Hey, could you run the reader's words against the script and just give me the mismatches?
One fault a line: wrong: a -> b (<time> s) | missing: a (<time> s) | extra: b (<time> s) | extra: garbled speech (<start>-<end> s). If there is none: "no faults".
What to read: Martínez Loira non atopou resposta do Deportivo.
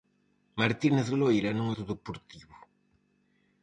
missing: atopou resposta (1.7 s)